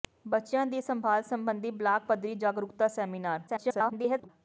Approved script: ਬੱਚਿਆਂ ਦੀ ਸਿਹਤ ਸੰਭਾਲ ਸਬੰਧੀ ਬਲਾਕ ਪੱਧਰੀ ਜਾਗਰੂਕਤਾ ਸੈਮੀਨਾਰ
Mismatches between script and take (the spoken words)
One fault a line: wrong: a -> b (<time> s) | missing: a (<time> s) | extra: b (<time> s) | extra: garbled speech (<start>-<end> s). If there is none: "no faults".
missing: ਸਿਹਤ (0.8 s)
extra: garbled speech (3.5-4.3 s)